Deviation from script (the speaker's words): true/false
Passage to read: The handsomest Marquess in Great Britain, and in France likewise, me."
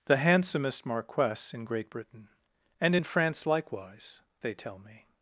true